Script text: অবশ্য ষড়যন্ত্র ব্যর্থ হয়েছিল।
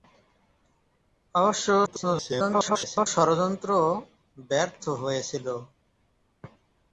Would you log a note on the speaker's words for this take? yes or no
yes